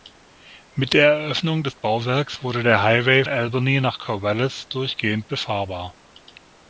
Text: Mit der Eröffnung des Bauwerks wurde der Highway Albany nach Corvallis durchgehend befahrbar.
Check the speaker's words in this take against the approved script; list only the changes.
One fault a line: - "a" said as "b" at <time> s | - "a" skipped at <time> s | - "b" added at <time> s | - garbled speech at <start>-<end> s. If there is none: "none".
none